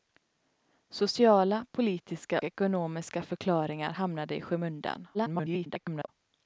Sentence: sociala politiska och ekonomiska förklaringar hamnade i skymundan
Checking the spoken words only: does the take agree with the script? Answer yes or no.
no